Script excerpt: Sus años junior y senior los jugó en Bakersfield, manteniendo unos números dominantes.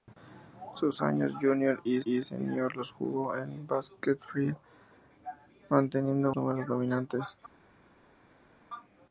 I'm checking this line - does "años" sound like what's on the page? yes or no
yes